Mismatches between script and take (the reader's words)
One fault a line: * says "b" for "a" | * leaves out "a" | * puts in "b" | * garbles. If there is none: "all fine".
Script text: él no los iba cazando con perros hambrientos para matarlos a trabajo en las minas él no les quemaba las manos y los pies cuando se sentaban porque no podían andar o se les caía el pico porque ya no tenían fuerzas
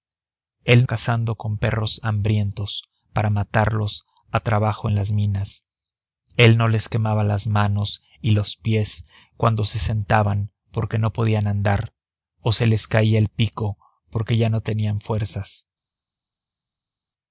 * leaves out "no los iba"